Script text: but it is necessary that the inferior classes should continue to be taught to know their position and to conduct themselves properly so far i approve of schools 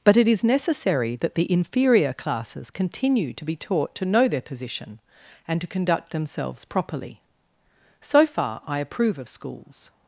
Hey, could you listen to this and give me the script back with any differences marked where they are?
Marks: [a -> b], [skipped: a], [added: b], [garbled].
but it is necessary that the inferior classes [skipped: should] continue to be taught to know their position and to conduct themselves properly so far i approve of schools